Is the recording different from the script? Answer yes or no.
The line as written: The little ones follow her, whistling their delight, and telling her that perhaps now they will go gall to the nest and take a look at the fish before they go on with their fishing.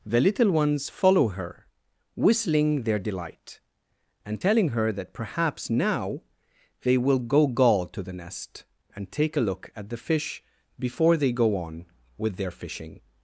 no